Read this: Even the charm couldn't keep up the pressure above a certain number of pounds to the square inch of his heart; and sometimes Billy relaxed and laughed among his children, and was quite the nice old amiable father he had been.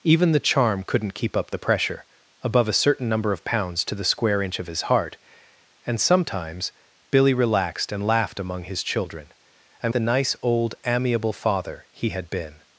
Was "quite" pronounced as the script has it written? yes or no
no